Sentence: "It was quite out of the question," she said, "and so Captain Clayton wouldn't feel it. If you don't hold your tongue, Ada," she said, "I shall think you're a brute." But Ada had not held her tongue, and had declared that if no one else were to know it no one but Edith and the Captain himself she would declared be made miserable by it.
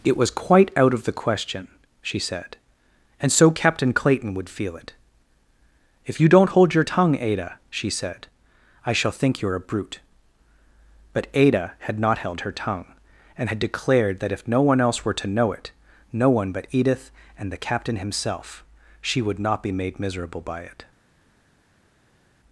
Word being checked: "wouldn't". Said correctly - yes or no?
no